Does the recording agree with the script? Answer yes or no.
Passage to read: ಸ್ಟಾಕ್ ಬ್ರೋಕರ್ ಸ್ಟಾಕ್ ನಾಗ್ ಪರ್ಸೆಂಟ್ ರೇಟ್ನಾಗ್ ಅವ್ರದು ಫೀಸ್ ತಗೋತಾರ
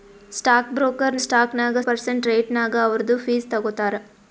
yes